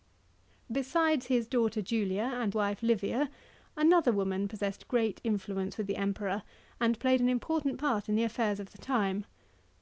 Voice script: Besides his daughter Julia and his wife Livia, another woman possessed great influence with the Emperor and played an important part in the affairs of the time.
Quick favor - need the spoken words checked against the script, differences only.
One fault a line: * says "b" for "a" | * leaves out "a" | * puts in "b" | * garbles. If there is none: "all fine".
* leaves out "his"